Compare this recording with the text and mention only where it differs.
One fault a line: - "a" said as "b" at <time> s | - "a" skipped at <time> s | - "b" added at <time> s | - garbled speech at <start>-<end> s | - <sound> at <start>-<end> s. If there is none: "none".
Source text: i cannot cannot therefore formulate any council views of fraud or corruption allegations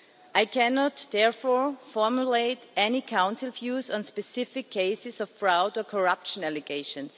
- "cannot" skipped at 1.1 s
- "on specific cases" added at 3.9 s